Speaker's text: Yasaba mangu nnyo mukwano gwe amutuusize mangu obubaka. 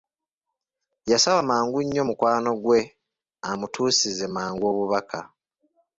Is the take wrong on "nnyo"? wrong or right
right